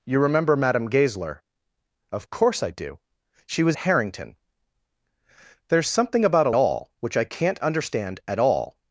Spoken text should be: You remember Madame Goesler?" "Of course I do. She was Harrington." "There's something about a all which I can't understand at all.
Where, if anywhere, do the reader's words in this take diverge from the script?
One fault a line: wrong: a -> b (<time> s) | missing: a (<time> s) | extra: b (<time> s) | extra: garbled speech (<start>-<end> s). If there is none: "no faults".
no faults